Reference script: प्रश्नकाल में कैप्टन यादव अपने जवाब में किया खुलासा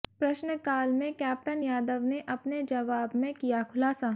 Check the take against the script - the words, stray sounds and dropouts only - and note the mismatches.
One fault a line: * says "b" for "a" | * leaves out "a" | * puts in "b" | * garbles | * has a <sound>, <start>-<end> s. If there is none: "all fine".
* puts in "ने"